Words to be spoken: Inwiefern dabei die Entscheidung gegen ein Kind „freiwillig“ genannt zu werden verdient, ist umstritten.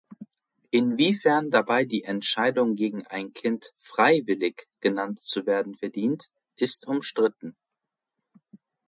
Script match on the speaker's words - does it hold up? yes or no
yes